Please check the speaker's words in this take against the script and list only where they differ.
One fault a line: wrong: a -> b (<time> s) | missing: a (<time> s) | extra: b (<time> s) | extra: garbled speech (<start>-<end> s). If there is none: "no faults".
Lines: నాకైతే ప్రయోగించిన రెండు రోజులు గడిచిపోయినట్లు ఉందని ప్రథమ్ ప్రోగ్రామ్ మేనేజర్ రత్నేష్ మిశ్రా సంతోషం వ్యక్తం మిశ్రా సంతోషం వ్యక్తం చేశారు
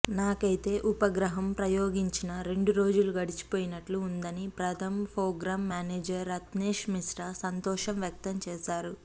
extra: ఉపగ్రహం (0.9 s)
missing: మిశ్రా సంతోషం వ్యక్తం (8.4 s)